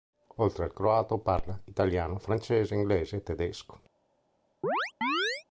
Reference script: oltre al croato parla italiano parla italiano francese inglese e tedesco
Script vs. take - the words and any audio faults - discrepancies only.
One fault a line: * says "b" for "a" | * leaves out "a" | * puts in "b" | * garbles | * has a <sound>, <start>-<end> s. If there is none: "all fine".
* leaves out "parla italiano"
* has a chirp, 4.6-5.4 s